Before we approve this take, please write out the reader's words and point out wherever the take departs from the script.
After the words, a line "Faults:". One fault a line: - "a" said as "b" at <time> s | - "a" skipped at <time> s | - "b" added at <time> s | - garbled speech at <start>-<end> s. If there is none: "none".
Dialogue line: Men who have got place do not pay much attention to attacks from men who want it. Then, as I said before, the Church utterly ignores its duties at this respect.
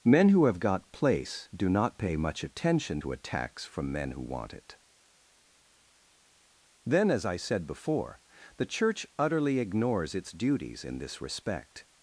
Men who have got place do not pay much attention to attacks from men who want it. Then, as I said before, the Church utterly ignores its duties in this respect.
Faults:
- "at" said as "in" at 10.8 s